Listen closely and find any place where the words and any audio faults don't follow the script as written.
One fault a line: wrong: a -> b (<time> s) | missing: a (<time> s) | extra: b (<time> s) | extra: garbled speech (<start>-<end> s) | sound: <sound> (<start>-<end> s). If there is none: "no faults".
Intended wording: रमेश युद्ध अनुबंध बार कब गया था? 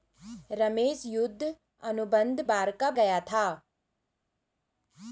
no faults